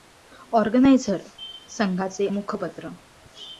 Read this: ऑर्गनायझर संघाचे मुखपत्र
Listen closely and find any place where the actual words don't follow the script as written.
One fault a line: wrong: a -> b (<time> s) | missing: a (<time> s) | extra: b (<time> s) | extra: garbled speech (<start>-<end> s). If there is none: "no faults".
no faults